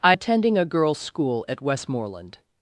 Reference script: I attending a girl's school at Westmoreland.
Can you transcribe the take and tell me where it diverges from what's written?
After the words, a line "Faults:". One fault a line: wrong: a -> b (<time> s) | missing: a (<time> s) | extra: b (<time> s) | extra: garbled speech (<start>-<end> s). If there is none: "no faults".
I attending a girl's school at Westmoreland.
Faults:
no faults